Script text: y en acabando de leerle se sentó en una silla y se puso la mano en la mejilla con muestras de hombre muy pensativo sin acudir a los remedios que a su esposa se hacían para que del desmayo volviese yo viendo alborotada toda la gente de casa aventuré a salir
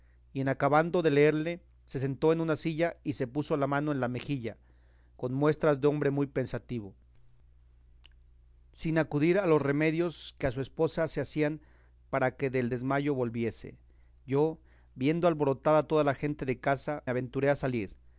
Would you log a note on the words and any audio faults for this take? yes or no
no